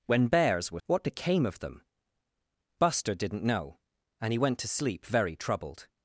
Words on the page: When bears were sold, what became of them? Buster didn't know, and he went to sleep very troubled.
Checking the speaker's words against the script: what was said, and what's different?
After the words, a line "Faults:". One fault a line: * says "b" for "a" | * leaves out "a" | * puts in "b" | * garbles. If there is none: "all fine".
When bears were what became of them? Buster didn't know, and he went to sleep very troubled.
Faults:
* leaves out "sold"